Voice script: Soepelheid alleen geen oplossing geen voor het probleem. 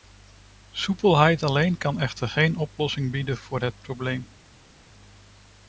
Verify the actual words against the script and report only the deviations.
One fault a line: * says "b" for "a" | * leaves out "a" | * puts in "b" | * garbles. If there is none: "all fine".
* puts in "kan echter"
* says "bieden" for "geen"